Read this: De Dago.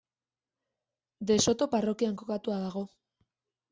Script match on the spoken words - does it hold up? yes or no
no